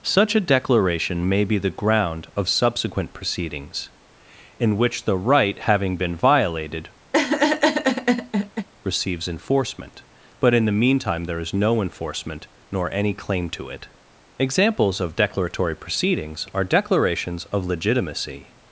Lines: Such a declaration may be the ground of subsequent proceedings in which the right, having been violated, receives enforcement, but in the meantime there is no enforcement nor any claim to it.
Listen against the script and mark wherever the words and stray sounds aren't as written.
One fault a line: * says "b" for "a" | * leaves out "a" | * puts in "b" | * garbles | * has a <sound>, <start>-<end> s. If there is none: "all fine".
* has a laugh, 7.1-8.7 s
* puts in "Examples of declaratory proceedings are declarations of legitimacy"